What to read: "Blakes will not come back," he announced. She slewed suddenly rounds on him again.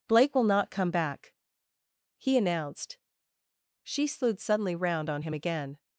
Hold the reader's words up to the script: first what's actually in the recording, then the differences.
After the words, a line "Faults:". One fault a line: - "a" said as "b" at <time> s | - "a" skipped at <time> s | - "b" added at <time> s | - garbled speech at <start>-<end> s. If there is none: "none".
"Blake will not come back," he announced. She slewed suddenly round on him again.
Faults:
- "Blakes" said as "Blake" at 0.1 s
- "rounds" said as "round" at 4.7 s